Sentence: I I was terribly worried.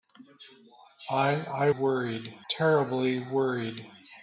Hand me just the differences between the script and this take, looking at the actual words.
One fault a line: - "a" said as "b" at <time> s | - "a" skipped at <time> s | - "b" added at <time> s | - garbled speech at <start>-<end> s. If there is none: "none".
- "was" said as "worried" at 1.7 s